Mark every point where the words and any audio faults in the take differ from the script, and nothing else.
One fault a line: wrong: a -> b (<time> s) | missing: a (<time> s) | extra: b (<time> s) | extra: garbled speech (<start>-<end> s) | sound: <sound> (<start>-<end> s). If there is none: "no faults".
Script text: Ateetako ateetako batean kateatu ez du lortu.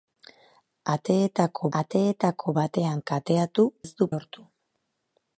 no faults